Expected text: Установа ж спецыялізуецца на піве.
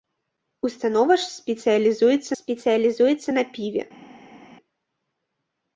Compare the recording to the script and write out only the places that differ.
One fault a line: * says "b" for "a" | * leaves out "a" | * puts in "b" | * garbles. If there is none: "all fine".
* puts in "спецыялізуецца"